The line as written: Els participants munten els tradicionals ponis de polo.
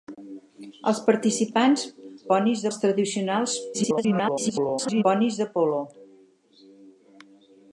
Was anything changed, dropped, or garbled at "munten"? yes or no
yes